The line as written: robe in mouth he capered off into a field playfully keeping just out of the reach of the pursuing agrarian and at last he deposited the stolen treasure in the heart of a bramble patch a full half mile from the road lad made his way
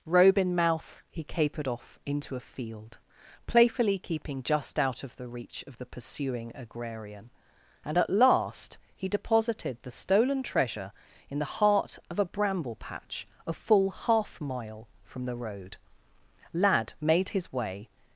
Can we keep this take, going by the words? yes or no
yes